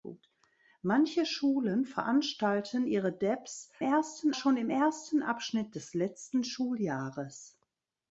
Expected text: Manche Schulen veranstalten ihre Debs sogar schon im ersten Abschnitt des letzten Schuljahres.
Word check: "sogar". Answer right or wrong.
wrong